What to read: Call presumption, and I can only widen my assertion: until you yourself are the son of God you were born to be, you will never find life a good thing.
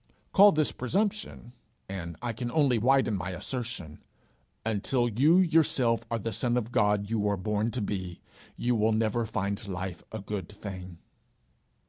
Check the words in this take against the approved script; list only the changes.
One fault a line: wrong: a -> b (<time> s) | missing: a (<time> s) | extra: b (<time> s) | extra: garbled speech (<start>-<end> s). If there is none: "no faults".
extra: this (0.5 s)